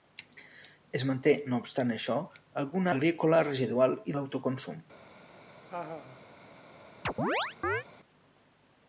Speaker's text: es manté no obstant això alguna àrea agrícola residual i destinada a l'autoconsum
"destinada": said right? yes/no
no